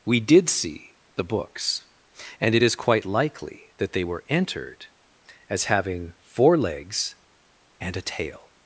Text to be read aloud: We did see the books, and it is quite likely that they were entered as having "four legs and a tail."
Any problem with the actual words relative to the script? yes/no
no